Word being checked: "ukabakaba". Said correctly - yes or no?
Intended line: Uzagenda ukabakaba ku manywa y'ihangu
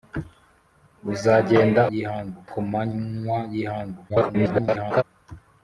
no